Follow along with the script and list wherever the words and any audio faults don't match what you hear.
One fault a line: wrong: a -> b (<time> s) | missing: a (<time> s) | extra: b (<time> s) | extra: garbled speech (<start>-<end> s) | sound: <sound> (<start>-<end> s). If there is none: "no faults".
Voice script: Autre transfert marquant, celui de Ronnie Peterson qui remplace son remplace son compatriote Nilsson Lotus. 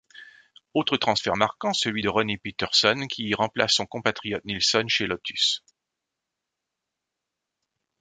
missing: remplace son (3.9 s)
extra: chez (4.9 s)